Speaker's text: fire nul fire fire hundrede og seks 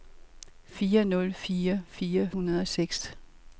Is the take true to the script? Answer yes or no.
yes